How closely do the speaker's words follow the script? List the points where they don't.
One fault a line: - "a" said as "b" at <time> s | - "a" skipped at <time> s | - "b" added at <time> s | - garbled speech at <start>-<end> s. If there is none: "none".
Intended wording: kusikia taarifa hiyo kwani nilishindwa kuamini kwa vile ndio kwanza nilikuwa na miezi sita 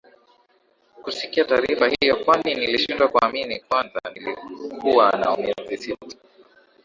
- "kwa vile ndio" skipped at 3.6 s